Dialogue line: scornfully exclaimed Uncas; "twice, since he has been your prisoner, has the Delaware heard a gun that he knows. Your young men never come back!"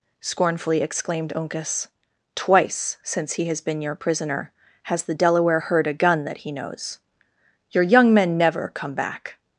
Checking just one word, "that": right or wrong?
right